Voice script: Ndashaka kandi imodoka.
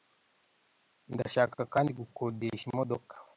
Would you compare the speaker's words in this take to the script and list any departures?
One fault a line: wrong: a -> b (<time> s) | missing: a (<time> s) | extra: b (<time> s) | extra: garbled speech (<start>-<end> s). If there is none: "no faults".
extra: gukodesha (2.0 s)